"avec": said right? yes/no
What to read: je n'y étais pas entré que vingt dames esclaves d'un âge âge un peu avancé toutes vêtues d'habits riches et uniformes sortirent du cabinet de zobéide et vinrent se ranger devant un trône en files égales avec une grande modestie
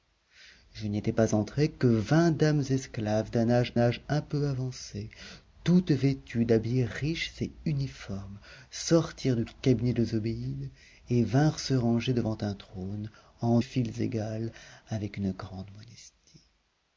yes